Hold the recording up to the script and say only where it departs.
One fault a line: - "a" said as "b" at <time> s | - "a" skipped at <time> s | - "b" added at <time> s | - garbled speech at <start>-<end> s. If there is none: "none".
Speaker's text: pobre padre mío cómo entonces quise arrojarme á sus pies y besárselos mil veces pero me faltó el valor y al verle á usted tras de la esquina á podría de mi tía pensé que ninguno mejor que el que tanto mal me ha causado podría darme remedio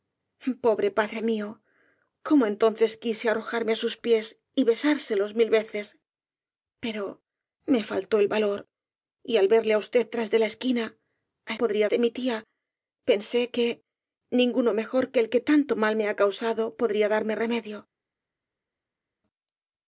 none